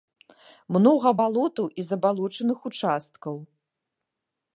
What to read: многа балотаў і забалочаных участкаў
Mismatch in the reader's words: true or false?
false